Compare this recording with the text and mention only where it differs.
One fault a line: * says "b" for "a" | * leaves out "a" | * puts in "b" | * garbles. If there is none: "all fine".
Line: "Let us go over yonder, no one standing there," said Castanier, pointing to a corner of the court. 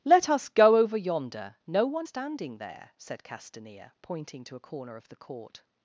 all fine